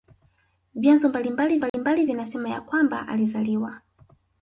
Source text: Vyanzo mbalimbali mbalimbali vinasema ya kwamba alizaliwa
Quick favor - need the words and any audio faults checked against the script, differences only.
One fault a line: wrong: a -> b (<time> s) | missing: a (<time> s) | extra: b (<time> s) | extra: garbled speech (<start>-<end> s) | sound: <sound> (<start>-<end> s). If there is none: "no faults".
sound: dropout (1.7-1.7 s)